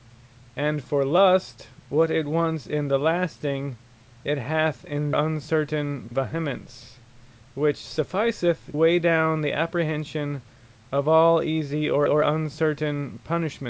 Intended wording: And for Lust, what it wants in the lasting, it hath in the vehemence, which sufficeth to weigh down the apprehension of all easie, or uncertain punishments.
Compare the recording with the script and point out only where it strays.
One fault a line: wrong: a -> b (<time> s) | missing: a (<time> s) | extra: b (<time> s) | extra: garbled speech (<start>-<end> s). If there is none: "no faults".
wrong: the -> uncertain (5.1 s)
missing: to (8.7 s)
extra: or (12.1 s)